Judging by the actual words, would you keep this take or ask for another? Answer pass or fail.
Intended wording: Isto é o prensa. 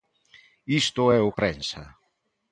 pass